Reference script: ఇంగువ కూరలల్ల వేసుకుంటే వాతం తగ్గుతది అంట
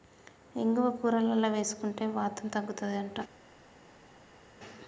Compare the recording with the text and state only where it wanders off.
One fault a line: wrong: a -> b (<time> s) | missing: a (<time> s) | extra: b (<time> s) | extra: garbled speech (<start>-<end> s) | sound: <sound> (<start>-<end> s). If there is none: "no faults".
no faults